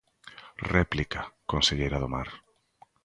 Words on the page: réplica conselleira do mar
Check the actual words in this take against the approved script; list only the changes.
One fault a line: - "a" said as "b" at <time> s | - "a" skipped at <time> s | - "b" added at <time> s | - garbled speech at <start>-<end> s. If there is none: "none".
none